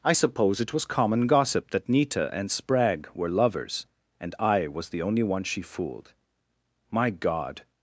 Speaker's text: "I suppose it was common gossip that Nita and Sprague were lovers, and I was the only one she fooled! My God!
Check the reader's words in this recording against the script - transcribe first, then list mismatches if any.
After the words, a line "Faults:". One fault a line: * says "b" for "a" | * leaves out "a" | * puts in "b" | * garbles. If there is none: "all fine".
"I suppose it was common gossip that Nita and Sprague were lovers, and I was the only one she fooled! My God!
Faults:
all fine